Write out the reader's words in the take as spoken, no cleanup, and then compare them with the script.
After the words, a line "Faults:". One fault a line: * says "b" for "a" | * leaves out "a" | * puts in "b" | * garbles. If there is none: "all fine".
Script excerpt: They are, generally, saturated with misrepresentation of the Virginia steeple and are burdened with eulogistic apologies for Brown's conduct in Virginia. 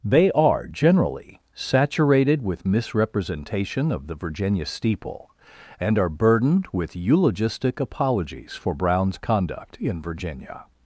They are, generally, saturated with misrepresentation of the Virginia steeple and are burdened with eulogistic apologies for Brown's conduct in Virginia.
Faults:
all fine